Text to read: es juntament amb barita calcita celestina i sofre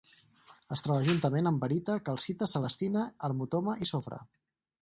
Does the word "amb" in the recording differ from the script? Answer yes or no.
no